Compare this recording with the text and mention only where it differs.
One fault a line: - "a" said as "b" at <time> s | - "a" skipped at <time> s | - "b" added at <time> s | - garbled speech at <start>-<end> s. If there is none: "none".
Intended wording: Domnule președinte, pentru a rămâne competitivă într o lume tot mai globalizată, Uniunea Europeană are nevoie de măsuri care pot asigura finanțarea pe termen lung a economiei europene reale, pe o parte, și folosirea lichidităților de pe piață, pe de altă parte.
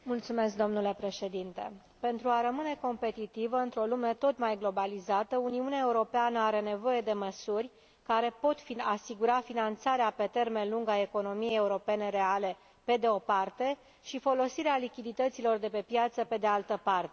- "de" added at 13.0 s